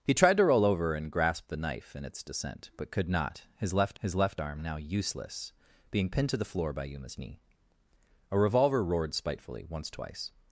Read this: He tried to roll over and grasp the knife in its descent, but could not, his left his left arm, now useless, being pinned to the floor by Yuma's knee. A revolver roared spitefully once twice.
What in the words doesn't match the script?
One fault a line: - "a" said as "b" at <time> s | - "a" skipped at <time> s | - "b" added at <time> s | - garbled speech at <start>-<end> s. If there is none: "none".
none